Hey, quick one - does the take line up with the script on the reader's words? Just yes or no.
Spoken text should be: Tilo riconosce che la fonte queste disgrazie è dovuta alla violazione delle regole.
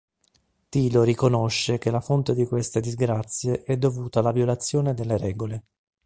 no